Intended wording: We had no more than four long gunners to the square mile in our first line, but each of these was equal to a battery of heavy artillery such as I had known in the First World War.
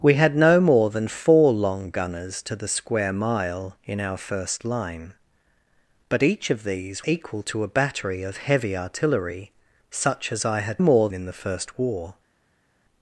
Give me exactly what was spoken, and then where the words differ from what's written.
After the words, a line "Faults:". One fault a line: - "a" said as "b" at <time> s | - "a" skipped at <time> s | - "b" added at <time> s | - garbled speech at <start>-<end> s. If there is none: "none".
We had no more than four long gunners to the square mile in our first line, but each of these equal to a battery of heavy artillery such as I had more in the First War.
Faults:
- "was" skipped at 7.0 s
- "known" said as "more" at 10.8 s
- "World" skipped at 11.7 s